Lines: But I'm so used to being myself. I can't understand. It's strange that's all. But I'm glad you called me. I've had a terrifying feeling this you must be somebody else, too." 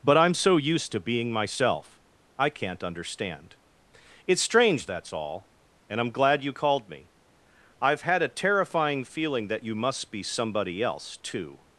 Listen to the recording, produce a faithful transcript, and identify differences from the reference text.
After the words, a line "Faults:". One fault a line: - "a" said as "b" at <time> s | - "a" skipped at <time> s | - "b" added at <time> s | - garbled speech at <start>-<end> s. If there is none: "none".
But I'm so used to being myself. I can't understand. It's strange that's all. And I'm glad you called me. I've had a terrifying feeling that you must be somebody else, too."
Faults:
- "But" said as "And" at 5.9 s
- "this" said as "that" at 9.5 s